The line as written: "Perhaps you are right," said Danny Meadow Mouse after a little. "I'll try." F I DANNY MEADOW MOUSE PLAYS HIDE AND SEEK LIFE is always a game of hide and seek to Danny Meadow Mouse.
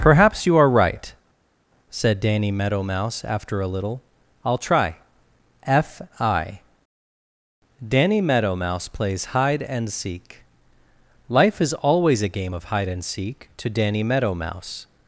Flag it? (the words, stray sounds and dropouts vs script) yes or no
no